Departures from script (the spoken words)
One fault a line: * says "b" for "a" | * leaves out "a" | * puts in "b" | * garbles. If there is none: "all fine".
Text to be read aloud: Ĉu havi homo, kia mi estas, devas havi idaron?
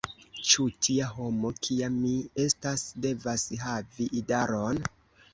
* says "tia" for "havi"